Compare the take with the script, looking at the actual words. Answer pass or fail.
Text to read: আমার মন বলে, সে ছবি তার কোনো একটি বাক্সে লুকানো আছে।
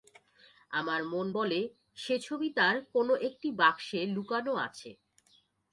pass